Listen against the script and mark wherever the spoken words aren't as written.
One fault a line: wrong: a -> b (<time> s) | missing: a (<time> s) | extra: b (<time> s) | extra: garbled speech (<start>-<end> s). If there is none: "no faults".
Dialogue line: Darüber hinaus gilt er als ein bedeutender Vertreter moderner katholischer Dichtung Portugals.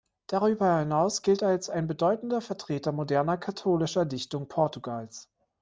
no faults